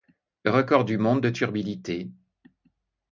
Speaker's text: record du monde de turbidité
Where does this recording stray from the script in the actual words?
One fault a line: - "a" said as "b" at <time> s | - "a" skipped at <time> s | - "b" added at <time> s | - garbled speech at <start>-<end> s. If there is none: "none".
none